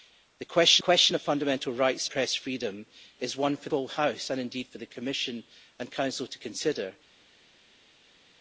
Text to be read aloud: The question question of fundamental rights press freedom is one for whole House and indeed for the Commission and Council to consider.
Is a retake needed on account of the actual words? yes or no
no